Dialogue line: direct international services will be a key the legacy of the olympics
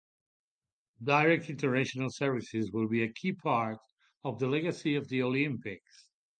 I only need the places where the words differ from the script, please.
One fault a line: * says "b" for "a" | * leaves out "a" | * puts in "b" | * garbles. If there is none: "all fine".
* puts in "part of"